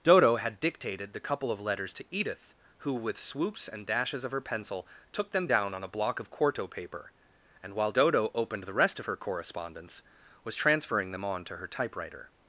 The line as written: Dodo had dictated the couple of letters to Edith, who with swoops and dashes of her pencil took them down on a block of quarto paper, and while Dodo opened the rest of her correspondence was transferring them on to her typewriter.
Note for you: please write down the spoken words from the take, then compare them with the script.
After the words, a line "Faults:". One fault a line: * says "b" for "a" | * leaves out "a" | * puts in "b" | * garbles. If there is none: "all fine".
Dodo had dictated the couple of letters to Edith, who with swoops and dashes of her pencil took them down on a block of quarto paper, and while Dodo opened the rest of her correspondence was transferring them on to her typewriter.
Faults:
all fine